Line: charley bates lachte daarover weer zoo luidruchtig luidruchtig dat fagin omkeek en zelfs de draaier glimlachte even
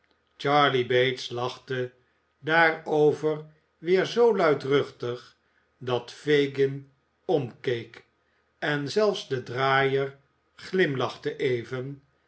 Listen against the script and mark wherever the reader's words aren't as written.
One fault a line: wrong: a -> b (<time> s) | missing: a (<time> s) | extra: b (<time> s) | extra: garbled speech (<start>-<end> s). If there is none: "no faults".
missing: luidruchtig (5.4 s)